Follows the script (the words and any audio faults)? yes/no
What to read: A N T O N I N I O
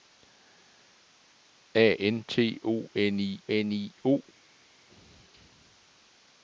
yes